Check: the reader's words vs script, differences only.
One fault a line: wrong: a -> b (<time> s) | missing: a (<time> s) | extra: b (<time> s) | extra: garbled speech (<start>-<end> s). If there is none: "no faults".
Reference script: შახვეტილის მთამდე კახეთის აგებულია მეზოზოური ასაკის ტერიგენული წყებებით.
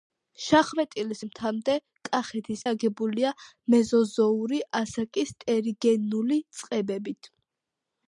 no faults